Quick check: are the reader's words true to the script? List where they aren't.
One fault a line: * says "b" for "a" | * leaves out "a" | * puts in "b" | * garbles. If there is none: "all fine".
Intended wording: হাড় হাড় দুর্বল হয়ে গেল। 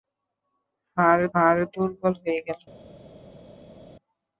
all fine